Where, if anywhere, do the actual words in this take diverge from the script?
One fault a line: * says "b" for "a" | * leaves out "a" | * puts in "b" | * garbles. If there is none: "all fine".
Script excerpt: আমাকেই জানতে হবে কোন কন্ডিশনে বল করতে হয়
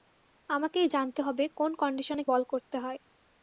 all fine